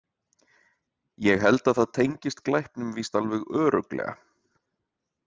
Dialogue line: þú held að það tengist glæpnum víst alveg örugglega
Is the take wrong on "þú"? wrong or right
wrong